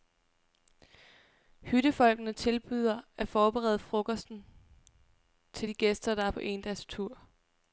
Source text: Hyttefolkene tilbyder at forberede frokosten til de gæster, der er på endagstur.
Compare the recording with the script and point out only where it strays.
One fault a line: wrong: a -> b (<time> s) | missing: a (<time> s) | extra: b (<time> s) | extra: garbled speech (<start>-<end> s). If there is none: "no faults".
no faults